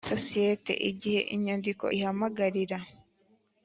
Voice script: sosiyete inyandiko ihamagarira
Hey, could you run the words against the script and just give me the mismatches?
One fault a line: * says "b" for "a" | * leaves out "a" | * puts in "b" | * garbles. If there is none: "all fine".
* puts in "igihe"